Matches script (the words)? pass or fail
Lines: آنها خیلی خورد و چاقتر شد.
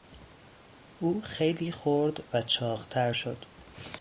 fail